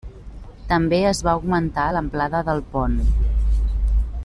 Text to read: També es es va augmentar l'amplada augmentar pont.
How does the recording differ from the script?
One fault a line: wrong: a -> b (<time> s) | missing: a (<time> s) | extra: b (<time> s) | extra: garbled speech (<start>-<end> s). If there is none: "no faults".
missing: es (1.2 s)
wrong: augmentar -> del (2.5 s)